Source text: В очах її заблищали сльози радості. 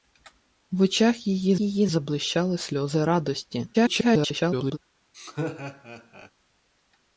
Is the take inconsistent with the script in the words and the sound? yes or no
yes